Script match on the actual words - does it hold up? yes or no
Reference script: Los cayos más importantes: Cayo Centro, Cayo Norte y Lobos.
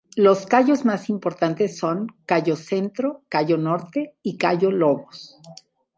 no